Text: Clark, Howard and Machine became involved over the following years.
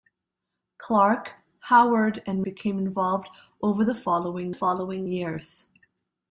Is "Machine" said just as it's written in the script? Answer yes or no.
no